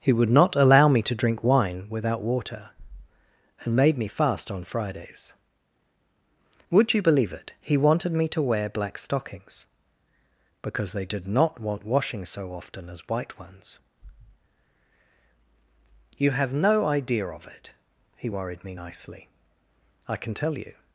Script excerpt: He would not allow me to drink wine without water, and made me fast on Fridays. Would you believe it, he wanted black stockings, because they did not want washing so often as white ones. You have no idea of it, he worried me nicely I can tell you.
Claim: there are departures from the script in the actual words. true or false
true